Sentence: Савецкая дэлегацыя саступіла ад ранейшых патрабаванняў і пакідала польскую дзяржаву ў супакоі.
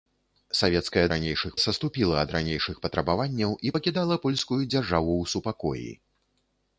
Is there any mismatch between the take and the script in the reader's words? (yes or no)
yes